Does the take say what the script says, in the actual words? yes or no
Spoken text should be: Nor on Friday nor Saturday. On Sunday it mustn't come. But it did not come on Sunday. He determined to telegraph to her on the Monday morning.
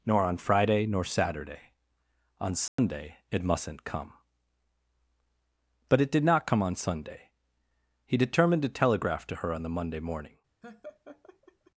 yes